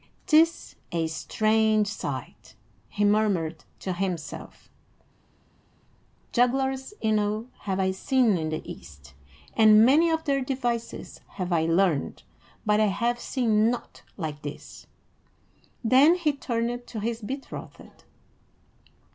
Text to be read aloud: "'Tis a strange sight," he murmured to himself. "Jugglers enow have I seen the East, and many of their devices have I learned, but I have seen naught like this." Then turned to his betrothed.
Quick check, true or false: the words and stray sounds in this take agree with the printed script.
false